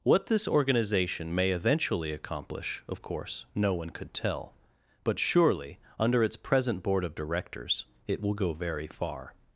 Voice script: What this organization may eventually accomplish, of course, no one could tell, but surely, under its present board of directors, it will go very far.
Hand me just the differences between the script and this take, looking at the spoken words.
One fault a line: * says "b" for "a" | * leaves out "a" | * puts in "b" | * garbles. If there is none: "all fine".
all fine